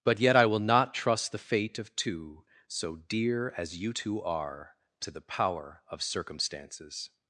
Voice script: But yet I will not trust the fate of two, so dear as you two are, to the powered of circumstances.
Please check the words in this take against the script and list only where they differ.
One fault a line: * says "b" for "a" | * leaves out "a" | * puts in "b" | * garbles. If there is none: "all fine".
* says "power" for "powered"